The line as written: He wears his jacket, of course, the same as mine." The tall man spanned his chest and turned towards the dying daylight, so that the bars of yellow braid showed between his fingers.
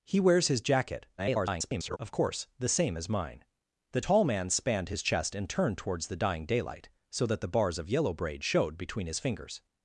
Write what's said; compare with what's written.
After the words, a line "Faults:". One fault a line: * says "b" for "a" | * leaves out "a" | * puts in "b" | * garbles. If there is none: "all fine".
He wears his jacket, [garbled] of course, the same as mine." The tall man spanned his chest and turned towards the dying daylight, so that the bars of yellow braid showed between his fingers.
Faults:
* garbles